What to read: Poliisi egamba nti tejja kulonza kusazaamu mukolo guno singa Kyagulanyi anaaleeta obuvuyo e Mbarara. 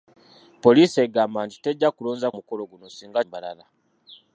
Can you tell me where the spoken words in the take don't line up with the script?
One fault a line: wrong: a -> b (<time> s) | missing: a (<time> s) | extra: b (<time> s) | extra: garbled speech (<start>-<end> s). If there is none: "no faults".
missing: kusazaamu (2.3 s)
missing: Kyagulanyi anaaleeta obuvuyo (3.2 s)